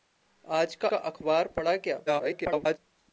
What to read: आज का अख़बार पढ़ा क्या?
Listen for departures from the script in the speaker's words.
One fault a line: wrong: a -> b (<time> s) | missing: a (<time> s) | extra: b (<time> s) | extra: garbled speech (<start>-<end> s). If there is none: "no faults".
extra: का (0.8 s)
extra: garbled speech (2.1-2.8 s)